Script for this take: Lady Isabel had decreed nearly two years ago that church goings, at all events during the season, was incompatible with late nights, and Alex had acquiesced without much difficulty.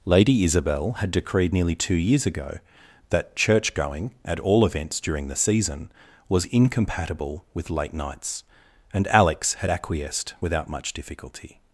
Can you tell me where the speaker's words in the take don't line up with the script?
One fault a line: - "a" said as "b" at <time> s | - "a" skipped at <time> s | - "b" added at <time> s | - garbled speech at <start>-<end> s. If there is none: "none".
- "goings" said as "going" at 3.7 s